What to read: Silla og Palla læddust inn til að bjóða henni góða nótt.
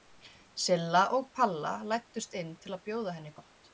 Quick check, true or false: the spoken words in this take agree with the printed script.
false